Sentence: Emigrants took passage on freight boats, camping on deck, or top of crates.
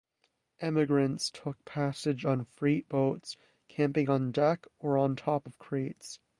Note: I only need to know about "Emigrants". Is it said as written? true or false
true